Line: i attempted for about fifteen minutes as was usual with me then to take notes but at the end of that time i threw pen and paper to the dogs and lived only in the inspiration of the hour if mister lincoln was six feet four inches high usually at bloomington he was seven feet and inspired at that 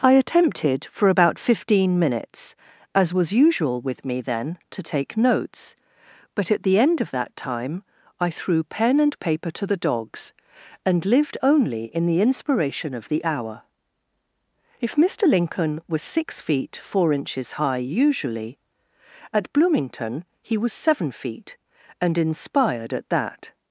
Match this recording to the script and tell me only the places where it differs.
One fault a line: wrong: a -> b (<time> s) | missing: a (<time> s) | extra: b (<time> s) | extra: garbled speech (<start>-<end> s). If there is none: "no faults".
no faults